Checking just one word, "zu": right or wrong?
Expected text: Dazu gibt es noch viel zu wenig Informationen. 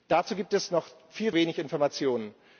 wrong